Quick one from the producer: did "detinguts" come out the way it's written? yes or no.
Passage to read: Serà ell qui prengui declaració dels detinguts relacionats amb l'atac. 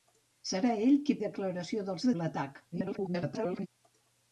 no